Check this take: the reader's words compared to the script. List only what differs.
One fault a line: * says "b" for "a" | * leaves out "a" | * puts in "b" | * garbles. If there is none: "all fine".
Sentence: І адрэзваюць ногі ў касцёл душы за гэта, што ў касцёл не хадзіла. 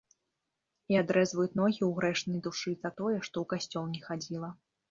* says "грэшнай" for "касцёл"
* says "тое" for "гэта"